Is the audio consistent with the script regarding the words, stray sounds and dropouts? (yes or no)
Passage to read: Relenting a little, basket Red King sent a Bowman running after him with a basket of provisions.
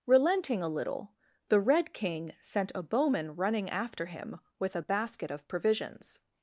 no